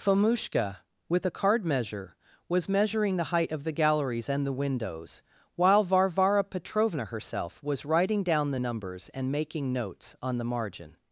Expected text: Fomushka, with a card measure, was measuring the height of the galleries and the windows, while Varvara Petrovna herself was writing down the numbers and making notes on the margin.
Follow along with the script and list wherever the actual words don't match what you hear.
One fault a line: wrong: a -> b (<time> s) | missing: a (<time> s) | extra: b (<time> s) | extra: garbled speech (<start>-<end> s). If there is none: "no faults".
no faults